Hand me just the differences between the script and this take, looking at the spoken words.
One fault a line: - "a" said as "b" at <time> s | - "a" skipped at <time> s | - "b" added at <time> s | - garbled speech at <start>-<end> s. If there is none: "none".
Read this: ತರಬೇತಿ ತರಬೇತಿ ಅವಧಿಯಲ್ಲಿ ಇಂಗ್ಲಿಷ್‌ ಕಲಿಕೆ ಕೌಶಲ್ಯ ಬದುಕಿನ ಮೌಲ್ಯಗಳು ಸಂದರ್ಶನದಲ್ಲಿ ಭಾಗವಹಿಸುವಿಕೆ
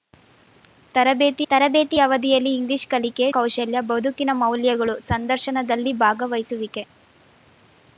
none